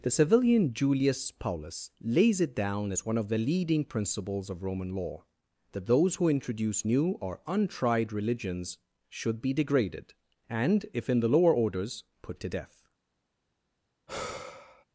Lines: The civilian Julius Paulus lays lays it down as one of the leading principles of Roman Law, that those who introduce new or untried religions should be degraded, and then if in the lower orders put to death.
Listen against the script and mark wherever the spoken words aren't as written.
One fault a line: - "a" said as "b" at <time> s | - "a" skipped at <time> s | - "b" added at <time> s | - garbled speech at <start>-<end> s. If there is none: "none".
- "lays" skipped at 2.4 s
- "then" skipped at 10.9 s